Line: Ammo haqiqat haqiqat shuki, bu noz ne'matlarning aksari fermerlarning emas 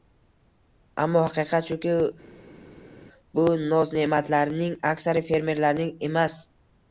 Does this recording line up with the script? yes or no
no